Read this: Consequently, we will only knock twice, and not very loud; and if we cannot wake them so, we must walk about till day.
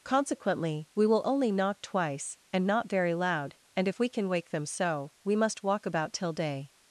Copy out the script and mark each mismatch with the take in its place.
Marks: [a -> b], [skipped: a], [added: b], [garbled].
Consequently, we will only knock twice, and not very loud; and if we [cannot -> can] wake them so, we must walk about till day.